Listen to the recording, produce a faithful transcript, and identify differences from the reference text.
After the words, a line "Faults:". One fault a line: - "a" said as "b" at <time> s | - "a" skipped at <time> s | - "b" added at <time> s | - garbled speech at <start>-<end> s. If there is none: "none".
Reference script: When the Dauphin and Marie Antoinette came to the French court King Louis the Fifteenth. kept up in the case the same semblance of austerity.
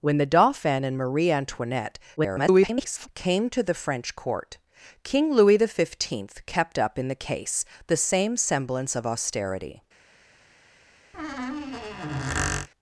When the Dauphin and Marie Antoinette [garbled] came to the French court King Louis the Fifteenth. kept up in the case the same semblance of austerity.
Faults:
- garbled speech at 2.2-3.1 s